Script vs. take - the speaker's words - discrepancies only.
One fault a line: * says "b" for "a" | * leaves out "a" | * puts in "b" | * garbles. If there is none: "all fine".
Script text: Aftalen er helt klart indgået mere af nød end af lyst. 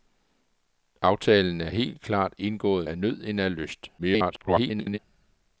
* leaves out "mere"
* garbles